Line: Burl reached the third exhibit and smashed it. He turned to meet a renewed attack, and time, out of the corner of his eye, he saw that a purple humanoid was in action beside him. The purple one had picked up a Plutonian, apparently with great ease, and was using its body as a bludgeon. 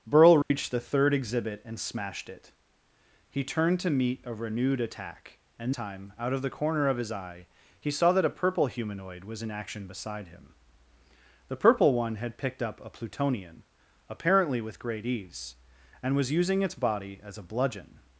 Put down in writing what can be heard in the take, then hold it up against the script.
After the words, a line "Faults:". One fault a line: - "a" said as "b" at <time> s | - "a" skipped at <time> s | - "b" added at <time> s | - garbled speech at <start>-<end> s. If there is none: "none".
Burl reached the third exhibit and smashed it. He turned to meet a renewed attack, and time, out of the corner of his eye, he saw that a purple humanoid was in action beside him. The purple one had picked up a Plutonian, apparently with great ease, and was using its body as a bludgeon.
Faults:
none